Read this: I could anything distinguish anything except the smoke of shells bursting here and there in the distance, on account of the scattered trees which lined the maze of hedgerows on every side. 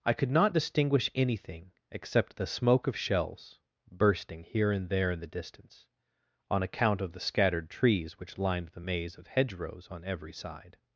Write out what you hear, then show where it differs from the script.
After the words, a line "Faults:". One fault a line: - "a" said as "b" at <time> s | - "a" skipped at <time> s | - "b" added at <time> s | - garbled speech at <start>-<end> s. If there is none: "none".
I could not distinguish anything except the smoke of shells bursting here and there in the distance, on account of the scattered trees which lined the maze of hedgerows on every side.
Faults:
- "anything" said as "not" at 0.3 s